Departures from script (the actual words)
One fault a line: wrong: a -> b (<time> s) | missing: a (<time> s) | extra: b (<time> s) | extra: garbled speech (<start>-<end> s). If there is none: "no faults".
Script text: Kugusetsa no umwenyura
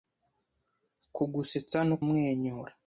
no faults